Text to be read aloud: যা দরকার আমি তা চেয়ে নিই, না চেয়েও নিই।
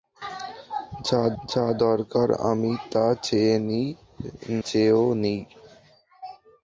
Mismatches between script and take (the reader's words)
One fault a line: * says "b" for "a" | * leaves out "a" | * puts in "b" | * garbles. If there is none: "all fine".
* puts in "যা"
* leaves out "না"